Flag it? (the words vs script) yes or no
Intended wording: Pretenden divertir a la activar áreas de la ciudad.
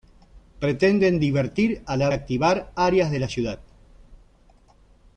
no